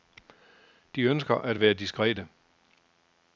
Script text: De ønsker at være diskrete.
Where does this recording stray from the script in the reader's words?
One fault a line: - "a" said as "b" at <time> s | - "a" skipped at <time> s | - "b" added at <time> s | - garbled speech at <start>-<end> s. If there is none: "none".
none